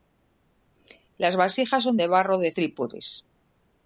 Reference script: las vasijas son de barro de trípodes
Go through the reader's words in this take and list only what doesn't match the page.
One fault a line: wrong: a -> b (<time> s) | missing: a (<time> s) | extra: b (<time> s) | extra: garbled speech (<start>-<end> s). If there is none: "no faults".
no faults